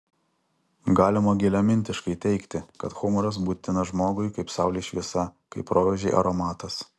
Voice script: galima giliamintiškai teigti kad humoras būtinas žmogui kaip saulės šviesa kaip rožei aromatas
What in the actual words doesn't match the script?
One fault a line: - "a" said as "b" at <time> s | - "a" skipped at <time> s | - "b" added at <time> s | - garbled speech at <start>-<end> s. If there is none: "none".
none